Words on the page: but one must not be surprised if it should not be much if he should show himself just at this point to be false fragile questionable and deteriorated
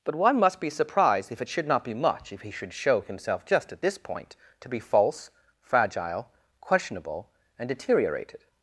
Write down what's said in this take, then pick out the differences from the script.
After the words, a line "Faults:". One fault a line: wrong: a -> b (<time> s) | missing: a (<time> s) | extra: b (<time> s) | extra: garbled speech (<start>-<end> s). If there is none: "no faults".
but one must be surprised if it should not be much if he should show himself just at this point to be false fragile questionable and deteriorated
Faults:
missing: not (0.6 s)